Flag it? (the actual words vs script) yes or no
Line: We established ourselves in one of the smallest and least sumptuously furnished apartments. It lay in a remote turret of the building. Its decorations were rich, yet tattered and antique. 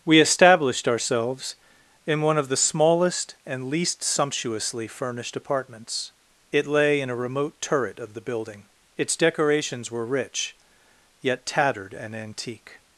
no